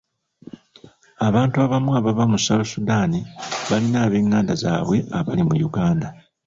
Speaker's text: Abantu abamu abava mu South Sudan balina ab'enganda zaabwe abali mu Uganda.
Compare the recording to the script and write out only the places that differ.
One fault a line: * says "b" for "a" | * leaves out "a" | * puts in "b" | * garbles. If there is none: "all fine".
all fine